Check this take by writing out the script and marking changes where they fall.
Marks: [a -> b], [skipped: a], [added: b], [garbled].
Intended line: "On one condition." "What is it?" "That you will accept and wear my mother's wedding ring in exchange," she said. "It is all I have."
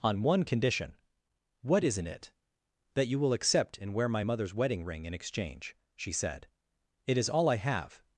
"On one condition." "What [is -> isn't] it?" "That you will accept and wear my mother's wedding ring in exchange," she said. "It is all I have."